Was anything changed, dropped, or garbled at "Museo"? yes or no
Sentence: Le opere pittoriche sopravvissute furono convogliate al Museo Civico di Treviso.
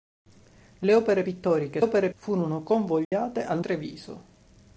yes